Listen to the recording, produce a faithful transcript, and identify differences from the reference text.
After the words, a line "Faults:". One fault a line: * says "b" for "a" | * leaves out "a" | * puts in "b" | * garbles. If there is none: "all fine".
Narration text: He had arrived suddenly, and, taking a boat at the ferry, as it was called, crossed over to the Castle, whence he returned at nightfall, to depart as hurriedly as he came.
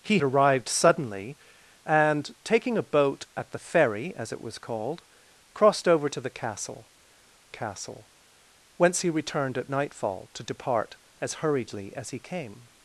He arrived suddenly, and, taking a boat at the ferry, as it was called, crossed over to the Castle Castle, whence he returned at nightfall, to depart as hurriedly as he came.
Faults:
* leaves out "had"
* puts in "Castle"